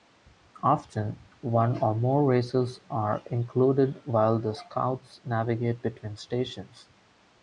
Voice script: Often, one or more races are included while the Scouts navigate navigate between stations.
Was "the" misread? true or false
false